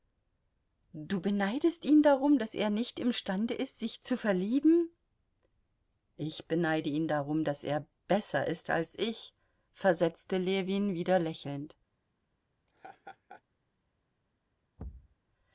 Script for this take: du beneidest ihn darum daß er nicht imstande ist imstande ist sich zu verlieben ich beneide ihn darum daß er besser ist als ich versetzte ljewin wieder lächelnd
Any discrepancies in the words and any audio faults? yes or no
yes